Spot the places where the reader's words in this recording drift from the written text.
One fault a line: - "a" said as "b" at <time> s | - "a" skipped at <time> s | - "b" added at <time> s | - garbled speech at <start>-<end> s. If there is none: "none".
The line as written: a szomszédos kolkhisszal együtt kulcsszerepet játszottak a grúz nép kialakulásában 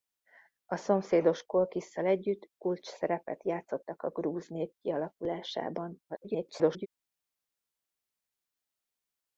- garbled speech at 6.1-6.9 s